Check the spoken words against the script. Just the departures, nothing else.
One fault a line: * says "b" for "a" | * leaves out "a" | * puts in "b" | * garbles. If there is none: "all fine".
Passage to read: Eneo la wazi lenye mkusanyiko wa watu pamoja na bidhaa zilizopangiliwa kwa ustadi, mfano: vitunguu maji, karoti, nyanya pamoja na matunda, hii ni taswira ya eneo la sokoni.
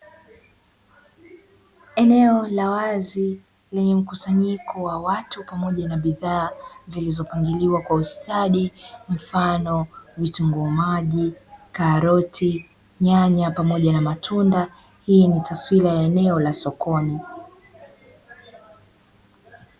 all fine